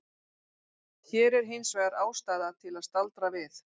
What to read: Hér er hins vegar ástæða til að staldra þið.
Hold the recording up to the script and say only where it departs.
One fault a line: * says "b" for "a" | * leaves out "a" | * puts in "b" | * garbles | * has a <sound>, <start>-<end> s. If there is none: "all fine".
* says "við" for "þið"